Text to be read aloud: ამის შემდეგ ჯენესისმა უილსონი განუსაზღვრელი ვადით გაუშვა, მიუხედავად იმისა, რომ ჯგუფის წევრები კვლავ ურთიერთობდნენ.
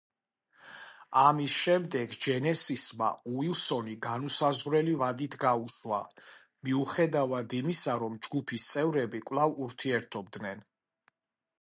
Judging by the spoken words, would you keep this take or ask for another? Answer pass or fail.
pass